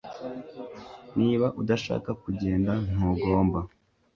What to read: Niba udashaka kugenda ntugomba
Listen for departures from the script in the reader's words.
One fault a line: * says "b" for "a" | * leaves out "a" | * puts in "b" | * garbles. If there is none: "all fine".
all fine